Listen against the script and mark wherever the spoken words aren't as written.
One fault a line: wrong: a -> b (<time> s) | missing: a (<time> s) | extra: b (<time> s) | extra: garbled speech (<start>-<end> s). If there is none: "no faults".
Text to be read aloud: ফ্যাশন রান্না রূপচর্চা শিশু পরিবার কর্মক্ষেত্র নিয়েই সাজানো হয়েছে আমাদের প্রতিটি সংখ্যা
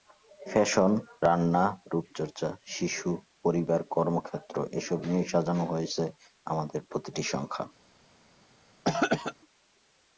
extra: এসব (4.7 s)